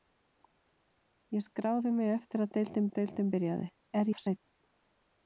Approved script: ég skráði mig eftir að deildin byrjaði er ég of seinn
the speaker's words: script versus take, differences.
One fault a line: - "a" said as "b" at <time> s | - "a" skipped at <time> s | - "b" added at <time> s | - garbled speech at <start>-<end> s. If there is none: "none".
- "að deildin" added at 2.9 s
- "ég" skipped at 4.1 s